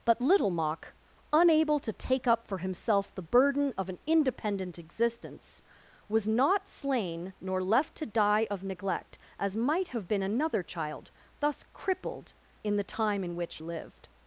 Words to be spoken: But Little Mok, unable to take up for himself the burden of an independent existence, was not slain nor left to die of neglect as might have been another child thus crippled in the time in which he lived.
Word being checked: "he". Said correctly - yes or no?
no